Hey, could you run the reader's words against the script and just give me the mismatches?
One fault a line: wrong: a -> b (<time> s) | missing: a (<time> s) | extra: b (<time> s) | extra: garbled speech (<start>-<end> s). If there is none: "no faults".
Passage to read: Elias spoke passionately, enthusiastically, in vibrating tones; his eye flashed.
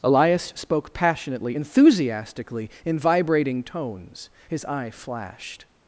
no faults